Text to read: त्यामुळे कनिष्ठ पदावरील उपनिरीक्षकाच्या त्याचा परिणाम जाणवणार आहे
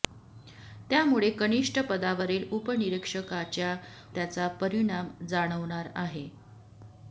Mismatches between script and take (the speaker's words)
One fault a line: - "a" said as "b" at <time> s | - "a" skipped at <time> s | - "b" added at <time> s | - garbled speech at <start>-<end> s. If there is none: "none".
none